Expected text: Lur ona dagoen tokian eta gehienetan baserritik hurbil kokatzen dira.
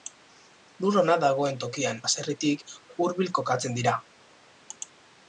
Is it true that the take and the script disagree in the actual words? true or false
true